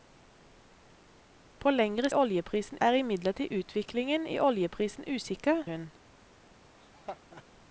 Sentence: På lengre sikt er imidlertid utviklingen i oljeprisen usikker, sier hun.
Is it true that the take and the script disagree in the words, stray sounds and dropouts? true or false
true